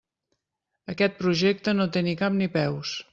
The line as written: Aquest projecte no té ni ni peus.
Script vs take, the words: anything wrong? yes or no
yes